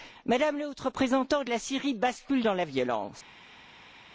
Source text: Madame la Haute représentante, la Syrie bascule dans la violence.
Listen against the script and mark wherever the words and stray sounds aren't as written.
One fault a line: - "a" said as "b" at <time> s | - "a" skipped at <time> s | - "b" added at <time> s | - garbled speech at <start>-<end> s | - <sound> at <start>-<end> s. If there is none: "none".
none